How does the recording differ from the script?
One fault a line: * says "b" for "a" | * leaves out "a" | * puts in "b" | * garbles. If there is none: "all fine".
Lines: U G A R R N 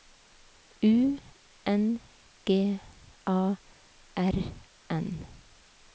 * puts in "N"
* leaves out "R"